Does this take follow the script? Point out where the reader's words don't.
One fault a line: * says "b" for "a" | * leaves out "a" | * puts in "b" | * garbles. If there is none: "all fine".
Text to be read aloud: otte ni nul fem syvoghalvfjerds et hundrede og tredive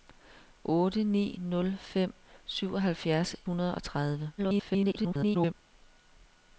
* leaves out "et"
* garbles